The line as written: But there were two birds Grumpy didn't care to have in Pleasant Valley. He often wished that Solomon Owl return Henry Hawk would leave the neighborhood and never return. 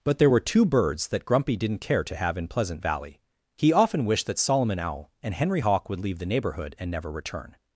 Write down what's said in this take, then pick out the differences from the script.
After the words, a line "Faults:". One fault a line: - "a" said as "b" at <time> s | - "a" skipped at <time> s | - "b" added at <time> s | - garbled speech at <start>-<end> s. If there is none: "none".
But there were two birds that Grumpy didn't care to have in Pleasant Valley. He often wished that Solomon Owl and Henry Hawk would leave the neighborhood and never return.
Faults:
- "that" added at 1.1 s
- "return" said as "and" at 5.2 s